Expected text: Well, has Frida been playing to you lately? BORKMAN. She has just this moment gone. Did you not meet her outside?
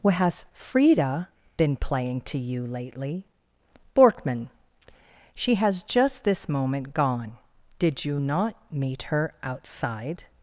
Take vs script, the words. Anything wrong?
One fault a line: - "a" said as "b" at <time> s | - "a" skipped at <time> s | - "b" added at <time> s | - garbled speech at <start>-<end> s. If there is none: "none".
- "Well" said as "What" at 0.0 s